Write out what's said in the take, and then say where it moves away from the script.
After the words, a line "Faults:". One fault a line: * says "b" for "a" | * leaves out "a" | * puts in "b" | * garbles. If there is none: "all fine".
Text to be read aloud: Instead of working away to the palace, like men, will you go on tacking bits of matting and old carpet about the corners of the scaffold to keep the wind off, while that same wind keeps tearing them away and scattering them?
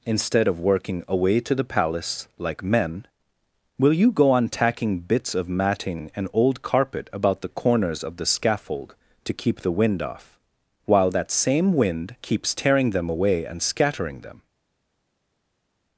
Instead of working away to the palace, like men, will you go on tacking bits of matting and old carpet about the corners of the scaffold to keep the wind off, while that same wind keeps tearing them away and scattering them?
Faults:
all fine